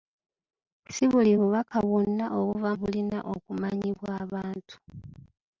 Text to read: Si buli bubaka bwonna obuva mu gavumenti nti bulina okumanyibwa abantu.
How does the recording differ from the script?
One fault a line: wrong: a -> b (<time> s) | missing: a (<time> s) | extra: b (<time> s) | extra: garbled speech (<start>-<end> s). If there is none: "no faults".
missing: mu gavumenti nti (2.7 s)